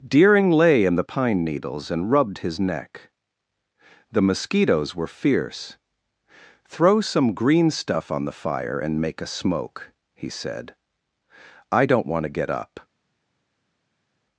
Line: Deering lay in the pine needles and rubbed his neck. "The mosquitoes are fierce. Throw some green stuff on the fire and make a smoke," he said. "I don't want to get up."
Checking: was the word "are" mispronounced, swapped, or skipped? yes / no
yes